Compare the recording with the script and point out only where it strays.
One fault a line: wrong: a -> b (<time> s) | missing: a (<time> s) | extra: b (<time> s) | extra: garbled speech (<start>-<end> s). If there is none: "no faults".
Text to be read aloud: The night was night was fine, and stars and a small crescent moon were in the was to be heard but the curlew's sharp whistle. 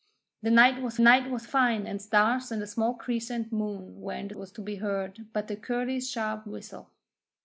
no faults